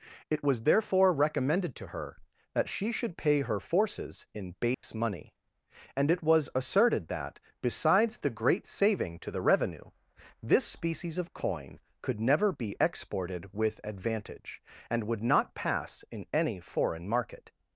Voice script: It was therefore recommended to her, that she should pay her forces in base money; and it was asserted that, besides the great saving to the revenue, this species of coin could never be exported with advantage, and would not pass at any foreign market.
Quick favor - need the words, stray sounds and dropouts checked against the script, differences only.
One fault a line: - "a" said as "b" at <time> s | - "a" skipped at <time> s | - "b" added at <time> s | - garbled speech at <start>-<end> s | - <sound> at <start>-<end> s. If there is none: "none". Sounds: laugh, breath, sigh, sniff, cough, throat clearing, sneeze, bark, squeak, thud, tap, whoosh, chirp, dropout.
- dropout at 4.7-4.8 s
- "at" said as "in" at 16.1 s